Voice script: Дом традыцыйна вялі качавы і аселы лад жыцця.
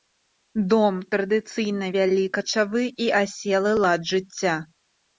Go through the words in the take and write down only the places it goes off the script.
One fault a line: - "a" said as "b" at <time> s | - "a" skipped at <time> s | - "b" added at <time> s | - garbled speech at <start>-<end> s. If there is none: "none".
none